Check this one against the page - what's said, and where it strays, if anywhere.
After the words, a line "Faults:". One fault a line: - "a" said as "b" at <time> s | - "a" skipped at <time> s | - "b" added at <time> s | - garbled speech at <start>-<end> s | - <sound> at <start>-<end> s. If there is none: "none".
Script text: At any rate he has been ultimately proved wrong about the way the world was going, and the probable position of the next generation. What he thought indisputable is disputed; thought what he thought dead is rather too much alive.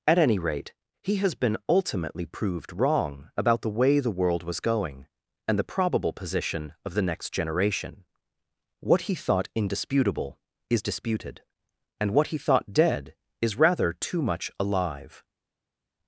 At any rate he has been ultimately proved wrong about the way the world was going, and the probable position of the next generation. What he thought indisputable is disputed; and what he thought dead is rather too much alive.
Faults:
- "thought" said as "and" at 12.0 s